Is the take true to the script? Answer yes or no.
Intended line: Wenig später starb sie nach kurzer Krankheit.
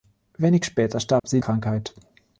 no